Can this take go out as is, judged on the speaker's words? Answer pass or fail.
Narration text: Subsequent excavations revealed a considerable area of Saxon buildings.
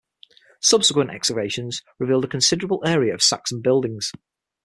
pass